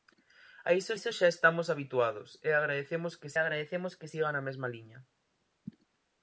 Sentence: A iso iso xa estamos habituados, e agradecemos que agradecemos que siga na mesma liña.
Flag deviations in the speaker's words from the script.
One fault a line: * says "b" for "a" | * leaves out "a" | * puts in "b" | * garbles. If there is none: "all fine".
all fine